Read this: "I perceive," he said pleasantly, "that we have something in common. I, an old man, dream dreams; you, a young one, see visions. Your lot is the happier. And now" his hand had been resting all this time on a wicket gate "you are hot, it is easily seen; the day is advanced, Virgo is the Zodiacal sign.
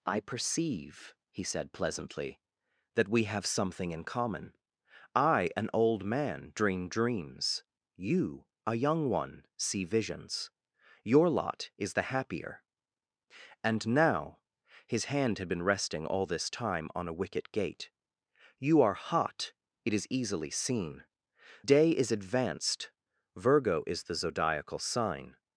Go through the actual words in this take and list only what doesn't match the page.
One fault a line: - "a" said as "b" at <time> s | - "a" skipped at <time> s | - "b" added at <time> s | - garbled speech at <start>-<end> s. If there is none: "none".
- "the" skipped at 21.0 s